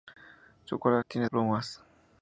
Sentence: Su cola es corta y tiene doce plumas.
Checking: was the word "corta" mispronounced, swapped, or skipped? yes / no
yes